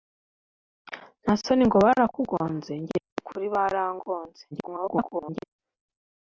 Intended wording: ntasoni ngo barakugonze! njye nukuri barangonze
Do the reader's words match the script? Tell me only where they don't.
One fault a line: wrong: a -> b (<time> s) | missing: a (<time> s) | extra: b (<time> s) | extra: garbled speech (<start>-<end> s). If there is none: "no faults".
extra: garbled speech (4.5-5.4 s)